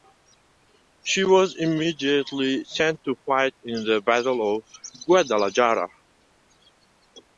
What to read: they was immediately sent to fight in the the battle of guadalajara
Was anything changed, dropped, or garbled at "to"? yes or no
no